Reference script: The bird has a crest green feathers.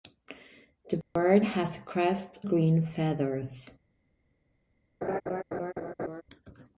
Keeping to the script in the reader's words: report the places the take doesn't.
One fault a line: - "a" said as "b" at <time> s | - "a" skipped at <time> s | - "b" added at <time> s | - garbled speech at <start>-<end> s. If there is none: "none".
none